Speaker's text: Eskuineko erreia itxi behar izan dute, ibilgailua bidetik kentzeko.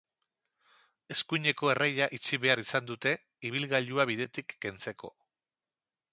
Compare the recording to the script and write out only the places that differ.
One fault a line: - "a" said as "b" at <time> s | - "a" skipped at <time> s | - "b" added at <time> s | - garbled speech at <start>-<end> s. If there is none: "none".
none